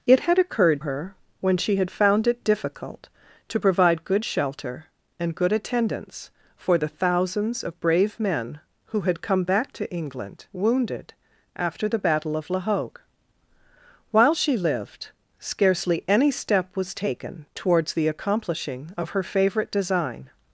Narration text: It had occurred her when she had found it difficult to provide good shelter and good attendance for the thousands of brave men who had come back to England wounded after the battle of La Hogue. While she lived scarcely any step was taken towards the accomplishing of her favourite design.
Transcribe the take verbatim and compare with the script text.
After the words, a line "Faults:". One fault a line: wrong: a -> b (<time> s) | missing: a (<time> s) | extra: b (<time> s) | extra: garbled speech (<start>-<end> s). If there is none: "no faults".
It had occurred her when she had found it difficult to provide good shelter and good attendance for the thousands of brave men who had come back to England wounded after the battle of La Hogue. While she lived scarcely any step was taken towards the accomplishing of her favourite design.
Faults:
no faults